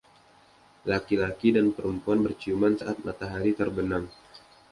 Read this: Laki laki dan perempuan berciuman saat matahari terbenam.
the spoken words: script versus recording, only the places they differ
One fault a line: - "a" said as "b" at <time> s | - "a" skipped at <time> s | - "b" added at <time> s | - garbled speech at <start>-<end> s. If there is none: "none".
none